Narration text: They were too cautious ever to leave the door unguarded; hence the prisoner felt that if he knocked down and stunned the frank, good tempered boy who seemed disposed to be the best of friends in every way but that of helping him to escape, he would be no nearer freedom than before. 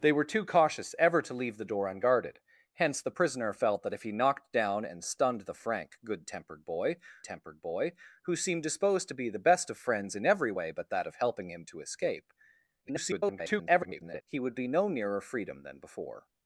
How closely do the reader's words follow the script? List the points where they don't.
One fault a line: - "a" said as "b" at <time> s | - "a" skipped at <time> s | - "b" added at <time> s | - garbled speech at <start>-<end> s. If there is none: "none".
- "tempered boy" added at 7.2 s
- garbled speech at 12.8-14.2 s